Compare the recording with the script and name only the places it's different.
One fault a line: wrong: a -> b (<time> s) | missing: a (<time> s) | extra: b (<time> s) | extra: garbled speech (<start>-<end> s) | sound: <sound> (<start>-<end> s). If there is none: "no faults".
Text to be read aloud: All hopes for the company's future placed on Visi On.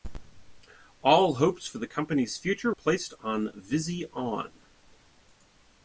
no faults